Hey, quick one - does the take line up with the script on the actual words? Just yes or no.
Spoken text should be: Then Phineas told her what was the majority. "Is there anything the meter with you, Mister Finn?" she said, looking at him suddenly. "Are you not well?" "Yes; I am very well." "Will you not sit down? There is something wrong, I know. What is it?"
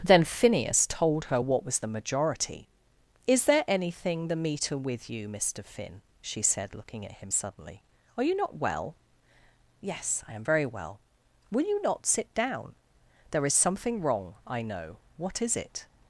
yes